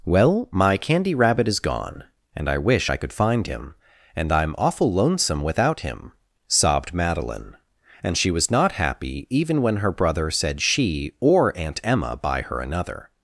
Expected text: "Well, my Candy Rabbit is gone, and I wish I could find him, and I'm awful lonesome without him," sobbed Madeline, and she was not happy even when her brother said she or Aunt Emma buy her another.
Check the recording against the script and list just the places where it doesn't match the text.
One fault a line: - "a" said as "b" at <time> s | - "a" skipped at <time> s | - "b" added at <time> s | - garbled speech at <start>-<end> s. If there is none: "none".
none